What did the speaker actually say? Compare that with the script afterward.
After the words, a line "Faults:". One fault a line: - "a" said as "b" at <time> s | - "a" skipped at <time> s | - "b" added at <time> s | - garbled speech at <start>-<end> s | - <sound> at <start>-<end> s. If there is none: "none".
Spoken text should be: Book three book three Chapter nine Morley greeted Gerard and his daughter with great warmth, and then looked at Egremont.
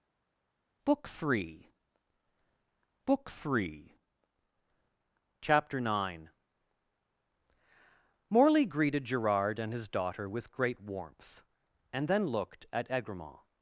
Book three book three Chapter nine Morley greeted Gerard and his daughter with great warmth, and then looked at Egremont.
Faults:
none